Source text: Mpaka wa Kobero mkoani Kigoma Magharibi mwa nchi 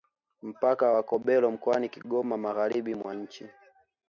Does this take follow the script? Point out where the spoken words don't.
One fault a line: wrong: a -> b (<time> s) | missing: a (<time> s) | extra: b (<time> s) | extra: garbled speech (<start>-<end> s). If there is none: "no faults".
no faults